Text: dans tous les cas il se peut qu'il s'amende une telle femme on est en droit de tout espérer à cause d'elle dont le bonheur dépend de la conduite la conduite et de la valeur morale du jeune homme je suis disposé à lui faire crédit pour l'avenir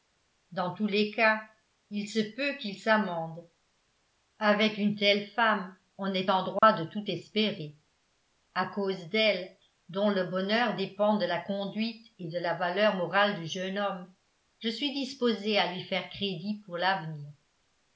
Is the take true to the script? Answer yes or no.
no